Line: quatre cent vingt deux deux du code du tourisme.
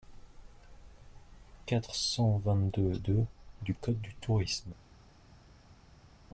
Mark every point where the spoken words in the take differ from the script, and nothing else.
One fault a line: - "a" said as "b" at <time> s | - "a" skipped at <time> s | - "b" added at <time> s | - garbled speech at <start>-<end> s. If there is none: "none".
none